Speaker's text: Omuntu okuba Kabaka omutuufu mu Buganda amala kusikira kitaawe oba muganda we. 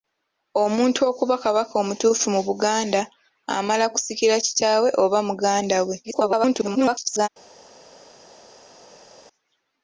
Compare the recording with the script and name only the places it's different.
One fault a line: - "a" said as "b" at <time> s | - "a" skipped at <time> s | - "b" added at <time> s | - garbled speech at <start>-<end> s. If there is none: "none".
- garbled speech at 6.0-7.3 s